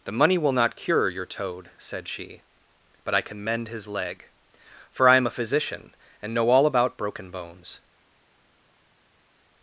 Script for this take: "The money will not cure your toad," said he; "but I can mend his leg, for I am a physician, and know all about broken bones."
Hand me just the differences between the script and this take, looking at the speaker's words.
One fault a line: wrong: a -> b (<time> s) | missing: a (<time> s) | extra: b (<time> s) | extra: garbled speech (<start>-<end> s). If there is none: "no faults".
wrong: he -> she (2.1 s)